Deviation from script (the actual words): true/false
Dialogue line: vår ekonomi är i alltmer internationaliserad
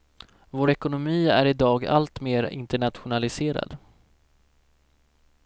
true